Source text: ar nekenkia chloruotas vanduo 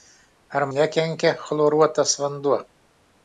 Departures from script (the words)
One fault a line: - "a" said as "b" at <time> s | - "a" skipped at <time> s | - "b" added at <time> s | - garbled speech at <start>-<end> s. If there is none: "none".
none